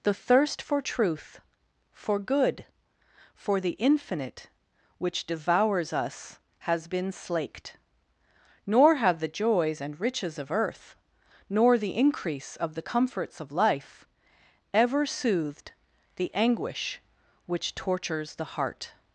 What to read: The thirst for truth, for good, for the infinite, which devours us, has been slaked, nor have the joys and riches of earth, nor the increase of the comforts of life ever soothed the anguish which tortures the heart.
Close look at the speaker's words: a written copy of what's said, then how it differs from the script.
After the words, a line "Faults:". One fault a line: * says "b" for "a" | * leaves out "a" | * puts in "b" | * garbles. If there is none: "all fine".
The thirst for truth, for good, for the infinite, which devours us, has been slaked, nor have the joys and riches of earth, nor the increase of the comforts of life ever soothed the anguish which tortures the heart.
Faults:
all fine